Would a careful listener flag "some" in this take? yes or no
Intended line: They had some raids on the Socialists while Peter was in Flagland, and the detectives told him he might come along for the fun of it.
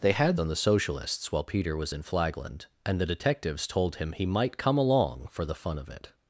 yes